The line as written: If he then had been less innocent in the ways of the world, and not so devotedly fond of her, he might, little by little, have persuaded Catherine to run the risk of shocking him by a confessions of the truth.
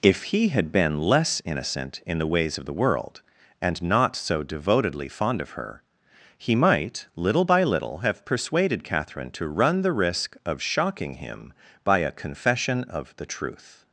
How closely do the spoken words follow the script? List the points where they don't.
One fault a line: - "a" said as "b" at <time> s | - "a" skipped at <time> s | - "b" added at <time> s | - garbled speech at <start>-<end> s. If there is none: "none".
- "then" skipped at 0.5 s
- "confessions" said as "confession" at 12.1 s